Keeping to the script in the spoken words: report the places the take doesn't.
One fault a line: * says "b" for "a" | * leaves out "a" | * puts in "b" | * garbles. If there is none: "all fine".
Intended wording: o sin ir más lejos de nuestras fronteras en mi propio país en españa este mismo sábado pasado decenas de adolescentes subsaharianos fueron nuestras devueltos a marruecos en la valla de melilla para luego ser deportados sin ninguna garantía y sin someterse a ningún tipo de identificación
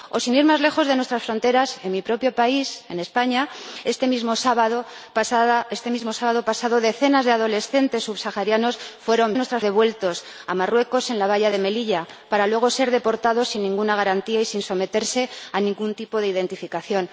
all fine